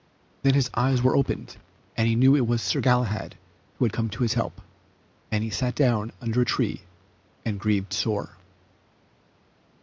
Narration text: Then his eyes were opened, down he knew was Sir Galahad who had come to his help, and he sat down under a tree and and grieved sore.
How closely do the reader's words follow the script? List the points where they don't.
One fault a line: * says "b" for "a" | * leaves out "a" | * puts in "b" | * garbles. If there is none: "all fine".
* says "and" for "down"
* puts in "it"
* leaves out "and"